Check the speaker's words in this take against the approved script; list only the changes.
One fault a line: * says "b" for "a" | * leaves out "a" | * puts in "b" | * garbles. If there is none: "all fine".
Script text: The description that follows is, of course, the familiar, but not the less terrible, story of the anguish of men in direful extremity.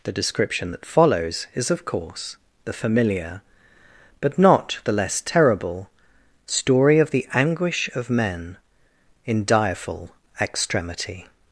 all fine